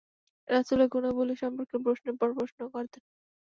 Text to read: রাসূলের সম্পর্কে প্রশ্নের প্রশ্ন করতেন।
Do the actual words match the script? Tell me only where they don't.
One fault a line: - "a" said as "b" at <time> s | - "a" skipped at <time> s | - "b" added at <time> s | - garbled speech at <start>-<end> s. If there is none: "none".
- "গুণাবলী" added at 0.9 s
- "পর" added at 2.2 s